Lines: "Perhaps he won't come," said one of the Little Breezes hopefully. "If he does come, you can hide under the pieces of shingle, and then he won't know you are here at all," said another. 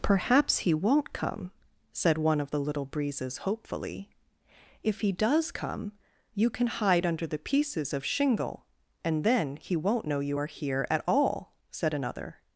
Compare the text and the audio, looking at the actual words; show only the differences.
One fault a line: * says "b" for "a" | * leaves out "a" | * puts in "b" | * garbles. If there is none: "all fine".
all fine